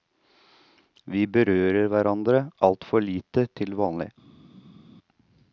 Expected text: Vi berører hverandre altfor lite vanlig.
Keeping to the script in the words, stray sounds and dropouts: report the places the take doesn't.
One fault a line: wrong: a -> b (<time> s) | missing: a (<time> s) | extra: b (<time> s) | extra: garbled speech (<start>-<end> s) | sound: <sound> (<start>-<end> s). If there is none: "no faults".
extra: til (3.6 s)